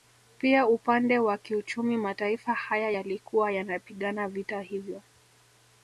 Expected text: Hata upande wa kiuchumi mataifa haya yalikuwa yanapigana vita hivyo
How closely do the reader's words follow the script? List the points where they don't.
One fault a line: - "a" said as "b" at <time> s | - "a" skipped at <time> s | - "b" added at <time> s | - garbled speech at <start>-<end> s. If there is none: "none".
- "Hata" said as "Pia" at 0.4 s